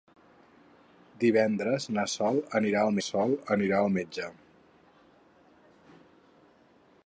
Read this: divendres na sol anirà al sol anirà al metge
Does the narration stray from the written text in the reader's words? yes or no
no